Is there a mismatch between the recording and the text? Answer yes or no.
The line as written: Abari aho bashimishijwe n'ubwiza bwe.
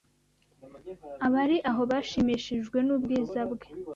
no